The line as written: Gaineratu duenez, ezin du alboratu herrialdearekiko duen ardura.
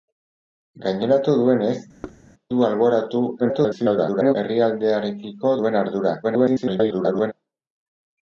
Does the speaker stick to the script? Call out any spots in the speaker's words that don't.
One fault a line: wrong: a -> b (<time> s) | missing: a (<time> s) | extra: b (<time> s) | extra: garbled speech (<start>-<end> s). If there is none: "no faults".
missing: ezin (1.8 s)
extra: garbled speech (3.4-4.4 s)
extra: garbled speech (6.2-7.3 s)